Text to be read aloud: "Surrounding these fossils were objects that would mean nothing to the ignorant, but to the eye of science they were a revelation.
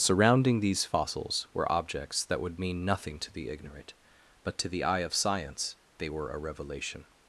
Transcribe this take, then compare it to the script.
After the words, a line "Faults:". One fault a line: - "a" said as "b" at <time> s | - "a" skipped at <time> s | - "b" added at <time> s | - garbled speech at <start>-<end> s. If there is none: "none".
"Surrounding these fossils were objects that would mean nothing to the ignorant, but to the eye of science they were a revelation.
Faults:
none